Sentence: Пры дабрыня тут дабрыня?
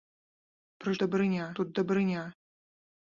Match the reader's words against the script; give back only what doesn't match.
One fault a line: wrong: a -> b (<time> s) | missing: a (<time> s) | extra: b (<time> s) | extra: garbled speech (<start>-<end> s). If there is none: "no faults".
no faults